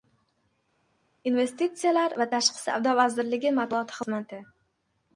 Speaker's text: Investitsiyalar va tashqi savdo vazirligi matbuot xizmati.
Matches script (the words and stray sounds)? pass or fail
pass